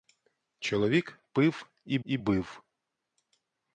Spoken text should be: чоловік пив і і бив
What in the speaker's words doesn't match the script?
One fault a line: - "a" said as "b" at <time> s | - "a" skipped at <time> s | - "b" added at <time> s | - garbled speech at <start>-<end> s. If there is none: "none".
none